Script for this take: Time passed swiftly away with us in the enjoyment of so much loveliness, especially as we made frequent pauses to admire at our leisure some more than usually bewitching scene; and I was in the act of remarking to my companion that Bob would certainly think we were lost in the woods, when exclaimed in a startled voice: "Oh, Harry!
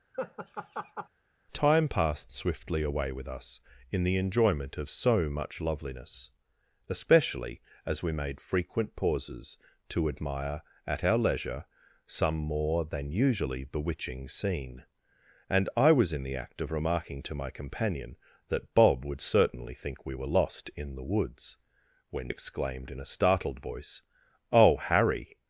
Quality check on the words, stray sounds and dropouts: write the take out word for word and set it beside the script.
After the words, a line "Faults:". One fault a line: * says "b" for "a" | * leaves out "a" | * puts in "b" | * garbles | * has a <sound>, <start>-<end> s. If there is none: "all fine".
Time passed swiftly away with us in the enjoyment of so much loveliness, especially as we made frequent pauses to admire at our leisure some more than usually bewitching scene; and I was in the act of remarking to my companion that Bob would certainly think we were lost in the woods, when exclaimed in a startled voice: "Oh, Harry!
Faults:
* has a laugh, 0.1-1.1 s